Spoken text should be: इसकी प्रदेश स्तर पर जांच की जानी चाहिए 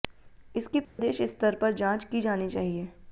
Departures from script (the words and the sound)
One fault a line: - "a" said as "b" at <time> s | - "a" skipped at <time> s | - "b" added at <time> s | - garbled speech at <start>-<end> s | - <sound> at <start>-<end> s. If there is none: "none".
- dropout at 0.8-1.0 s